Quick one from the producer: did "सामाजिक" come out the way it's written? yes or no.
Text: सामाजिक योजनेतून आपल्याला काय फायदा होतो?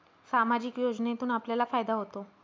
yes